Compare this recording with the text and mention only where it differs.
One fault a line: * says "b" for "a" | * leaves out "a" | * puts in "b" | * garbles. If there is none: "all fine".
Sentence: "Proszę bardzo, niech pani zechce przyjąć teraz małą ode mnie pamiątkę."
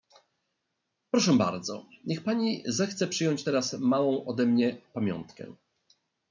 all fine